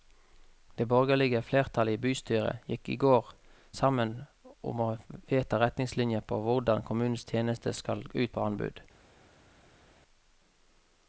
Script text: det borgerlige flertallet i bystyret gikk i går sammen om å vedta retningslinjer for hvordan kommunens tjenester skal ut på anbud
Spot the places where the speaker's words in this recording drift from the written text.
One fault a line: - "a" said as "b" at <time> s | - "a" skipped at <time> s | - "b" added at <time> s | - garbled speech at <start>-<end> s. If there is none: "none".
none